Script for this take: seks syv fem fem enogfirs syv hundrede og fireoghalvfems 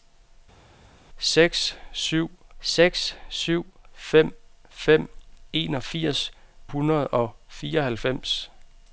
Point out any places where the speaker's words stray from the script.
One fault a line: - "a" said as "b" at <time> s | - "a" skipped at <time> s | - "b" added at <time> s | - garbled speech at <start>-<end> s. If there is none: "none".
- "seks syv" added at 2.6 s
- "syv" skipped at 6.3 s